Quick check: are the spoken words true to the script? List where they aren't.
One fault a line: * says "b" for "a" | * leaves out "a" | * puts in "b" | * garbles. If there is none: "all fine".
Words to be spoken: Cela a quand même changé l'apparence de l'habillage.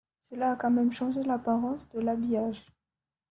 all fine